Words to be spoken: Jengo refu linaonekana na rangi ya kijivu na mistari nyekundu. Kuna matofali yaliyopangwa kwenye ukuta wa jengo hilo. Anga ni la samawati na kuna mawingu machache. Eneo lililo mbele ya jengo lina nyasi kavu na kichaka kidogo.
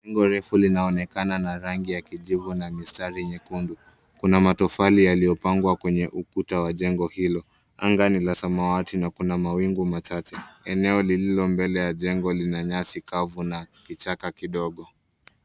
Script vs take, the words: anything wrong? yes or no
no